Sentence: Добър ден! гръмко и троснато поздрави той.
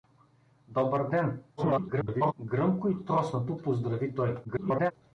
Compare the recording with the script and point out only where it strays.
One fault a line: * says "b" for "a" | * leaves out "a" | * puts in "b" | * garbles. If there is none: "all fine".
* garbles
* garbles